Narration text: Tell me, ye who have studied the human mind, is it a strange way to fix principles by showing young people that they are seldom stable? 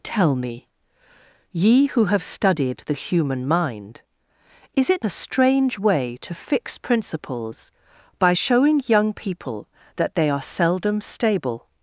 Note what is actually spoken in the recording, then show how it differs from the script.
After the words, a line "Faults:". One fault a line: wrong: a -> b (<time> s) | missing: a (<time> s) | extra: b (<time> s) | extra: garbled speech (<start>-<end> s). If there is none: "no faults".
Tell me, ye who have studied the human mind, is it a strange way to fix principles by showing young people that they are seldom stable?
Faults:
no faults